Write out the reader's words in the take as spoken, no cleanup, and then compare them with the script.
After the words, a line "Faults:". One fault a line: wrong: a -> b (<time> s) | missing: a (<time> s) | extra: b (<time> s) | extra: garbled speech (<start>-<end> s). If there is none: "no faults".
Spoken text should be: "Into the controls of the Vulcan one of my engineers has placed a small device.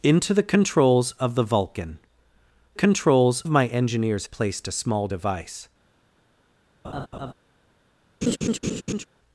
"Into the controls of the Vulcan controls of my engineers placed a small device.
Faults:
wrong: one -> controls (2.7 s)
missing: has (4.3 s)